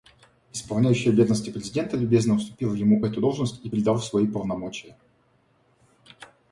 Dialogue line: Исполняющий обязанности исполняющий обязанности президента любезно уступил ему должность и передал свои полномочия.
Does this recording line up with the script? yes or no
no